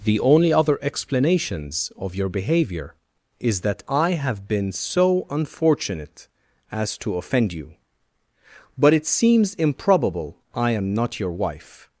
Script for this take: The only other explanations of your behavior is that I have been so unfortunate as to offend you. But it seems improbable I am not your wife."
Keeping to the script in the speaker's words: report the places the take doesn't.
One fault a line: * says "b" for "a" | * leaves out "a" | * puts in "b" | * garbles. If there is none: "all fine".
all fine